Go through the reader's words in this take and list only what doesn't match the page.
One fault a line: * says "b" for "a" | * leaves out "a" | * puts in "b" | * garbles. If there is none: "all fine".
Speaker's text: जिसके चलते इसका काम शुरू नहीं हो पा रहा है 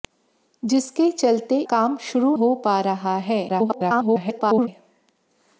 * leaves out "इसका"
* leaves out "नहीं"
* garbles